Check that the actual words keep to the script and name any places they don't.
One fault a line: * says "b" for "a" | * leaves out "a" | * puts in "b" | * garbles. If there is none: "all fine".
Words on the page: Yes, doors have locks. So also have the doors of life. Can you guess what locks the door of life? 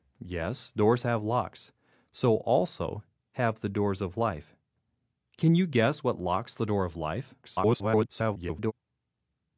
* garbles